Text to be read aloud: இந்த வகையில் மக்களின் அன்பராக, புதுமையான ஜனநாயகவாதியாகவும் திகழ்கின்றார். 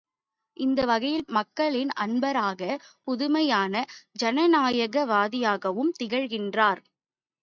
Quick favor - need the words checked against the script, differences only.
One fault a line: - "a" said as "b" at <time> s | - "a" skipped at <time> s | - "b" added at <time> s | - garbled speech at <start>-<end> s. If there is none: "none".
none